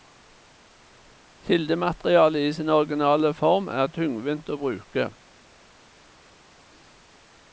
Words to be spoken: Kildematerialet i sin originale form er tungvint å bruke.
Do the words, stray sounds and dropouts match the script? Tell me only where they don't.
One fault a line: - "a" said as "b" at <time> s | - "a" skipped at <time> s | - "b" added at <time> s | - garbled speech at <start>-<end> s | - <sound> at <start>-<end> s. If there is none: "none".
none